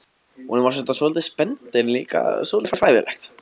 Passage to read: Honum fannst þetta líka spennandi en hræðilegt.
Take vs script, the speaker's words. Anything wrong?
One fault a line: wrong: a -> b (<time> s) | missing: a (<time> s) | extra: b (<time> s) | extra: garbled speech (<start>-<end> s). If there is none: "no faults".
wrong: líka -> svolítið (1.0 s)
extra: líka svolítið (2.0 s)